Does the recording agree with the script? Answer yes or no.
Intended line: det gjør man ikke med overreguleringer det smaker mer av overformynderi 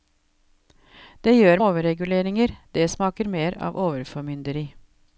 no